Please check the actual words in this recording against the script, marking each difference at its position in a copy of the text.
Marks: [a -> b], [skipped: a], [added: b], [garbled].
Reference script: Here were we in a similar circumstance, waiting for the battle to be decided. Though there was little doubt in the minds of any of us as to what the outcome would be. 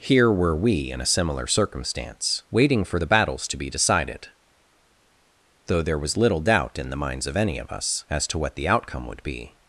Here were we in a similar circumstance, waiting for the [battle -> battles] to be decided. Though there was little doubt in the minds of any of us as to what the outcome would be.